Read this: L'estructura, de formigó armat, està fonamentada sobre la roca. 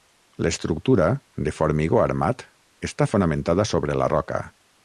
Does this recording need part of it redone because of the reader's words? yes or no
no